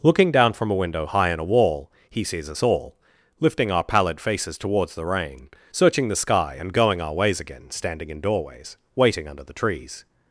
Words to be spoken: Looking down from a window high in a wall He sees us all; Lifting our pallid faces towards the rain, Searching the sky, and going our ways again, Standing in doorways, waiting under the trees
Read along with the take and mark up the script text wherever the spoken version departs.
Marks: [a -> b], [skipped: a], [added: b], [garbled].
Looking down from a window high in a wall He sees us all; Lifting our pallid faces towards the rain, Searching the sky, and going our ways again, Standing in doorways, waiting under the trees